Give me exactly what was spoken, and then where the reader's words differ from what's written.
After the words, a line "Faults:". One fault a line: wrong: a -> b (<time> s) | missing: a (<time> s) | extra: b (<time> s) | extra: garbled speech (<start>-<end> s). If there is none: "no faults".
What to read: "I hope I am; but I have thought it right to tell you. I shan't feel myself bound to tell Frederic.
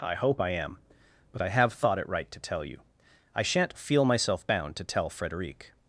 "I hope I am; but I have thought it right to tell you. I shan't feel myself bound to tell Frederic.
Faults:
no faults